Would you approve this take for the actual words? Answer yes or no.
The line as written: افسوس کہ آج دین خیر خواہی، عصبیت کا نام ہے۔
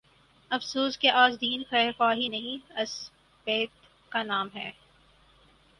no